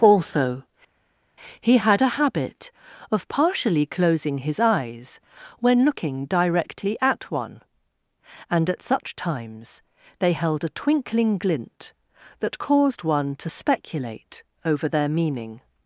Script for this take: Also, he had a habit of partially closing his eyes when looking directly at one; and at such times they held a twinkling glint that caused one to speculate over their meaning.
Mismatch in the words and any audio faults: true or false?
false